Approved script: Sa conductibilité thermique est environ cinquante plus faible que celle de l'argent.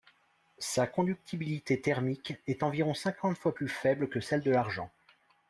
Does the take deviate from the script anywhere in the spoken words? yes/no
yes